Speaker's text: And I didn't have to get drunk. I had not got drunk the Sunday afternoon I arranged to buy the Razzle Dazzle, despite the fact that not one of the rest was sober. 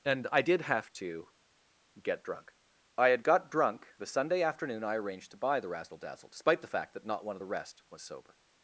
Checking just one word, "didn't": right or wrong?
wrong